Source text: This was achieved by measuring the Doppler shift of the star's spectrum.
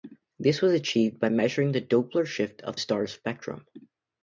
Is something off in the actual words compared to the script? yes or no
yes